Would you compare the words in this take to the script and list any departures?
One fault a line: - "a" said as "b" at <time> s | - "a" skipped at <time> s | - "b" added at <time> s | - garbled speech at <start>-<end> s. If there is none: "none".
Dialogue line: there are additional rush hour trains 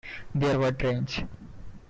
- "are additional rush" skipped at 0.6 s